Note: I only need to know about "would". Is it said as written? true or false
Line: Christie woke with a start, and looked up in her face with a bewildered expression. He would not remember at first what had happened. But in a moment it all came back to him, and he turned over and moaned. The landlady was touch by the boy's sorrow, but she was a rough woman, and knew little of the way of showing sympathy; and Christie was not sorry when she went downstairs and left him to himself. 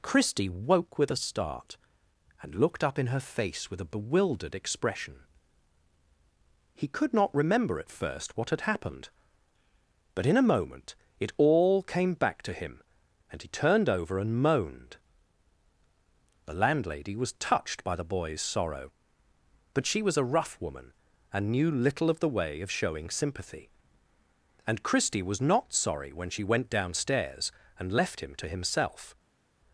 false